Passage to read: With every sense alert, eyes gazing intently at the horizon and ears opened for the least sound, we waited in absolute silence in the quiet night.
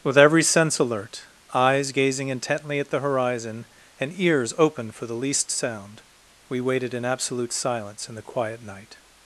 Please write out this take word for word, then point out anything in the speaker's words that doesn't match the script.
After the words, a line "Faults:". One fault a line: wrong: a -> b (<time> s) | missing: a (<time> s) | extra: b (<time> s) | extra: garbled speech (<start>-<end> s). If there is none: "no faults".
With every sense alert, eyes gazing intently at the horizon and ears open for the least sound, we waited in absolute silence in the quiet night.
Faults:
wrong: opened -> open (4.6 s)